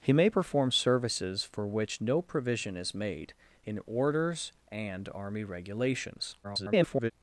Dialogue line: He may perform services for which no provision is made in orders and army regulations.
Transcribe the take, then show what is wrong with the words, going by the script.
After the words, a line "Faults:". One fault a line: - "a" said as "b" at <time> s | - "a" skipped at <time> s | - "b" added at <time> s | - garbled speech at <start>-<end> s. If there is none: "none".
He may perform services for which no provision is made in orders and army regulations. [garbled]
Faults:
- garbled speech at 6.4-7.1 s